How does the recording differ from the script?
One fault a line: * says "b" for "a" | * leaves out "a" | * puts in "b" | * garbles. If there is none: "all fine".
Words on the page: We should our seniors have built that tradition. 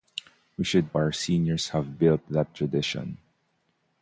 all fine